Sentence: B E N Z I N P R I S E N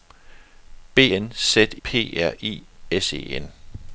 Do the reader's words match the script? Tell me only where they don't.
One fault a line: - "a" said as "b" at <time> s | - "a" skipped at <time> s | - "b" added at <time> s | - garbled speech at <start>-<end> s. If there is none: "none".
- "E" skipped at 1.0 s
- "I N" skipped at 1.7 s